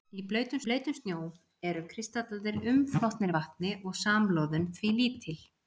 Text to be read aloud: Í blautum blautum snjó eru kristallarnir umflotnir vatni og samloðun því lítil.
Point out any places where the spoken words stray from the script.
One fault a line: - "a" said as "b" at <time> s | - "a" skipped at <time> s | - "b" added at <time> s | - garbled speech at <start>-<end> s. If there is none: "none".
none